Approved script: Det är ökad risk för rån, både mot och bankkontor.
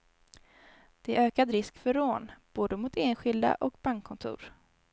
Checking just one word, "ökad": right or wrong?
right